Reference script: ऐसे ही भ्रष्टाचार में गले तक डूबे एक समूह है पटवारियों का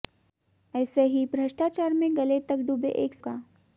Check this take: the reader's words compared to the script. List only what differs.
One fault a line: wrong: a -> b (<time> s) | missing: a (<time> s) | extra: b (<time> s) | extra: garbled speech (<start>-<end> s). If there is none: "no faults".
missing: समूह है पटवारियों (3.1 s)